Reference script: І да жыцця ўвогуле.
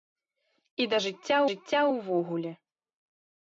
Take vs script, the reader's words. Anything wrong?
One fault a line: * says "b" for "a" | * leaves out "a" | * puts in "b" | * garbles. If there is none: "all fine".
* puts in "жыцця"